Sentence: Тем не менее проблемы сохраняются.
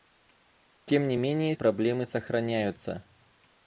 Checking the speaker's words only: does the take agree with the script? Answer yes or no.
yes